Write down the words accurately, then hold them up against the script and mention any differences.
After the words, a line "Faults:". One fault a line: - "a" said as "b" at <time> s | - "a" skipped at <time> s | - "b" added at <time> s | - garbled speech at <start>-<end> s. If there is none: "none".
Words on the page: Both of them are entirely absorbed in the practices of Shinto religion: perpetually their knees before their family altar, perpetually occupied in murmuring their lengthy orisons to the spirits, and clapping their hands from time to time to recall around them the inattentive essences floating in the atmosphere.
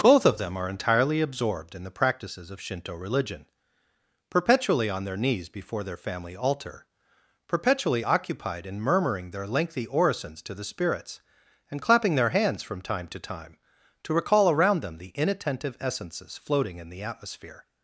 Both of them are entirely absorbed in the practices of Shinto religion: perpetually on their knees before their family altar, perpetually occupied in murmuring their lengthy orisons to the spirits, and clapping their hands from time to time to recall around them the inattentive essences floating in the atmosphere.
Faults:
- "on" added at 4.9 s